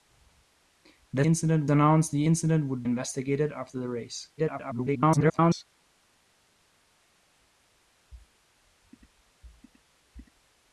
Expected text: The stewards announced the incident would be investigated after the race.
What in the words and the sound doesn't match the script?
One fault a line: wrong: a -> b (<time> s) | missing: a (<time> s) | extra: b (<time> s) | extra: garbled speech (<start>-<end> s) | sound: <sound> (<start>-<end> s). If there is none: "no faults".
wrong: stewards -> incident (1.3 s)
missing: be (2.8 s)
extra: garbled speech (4.4-5.6 s)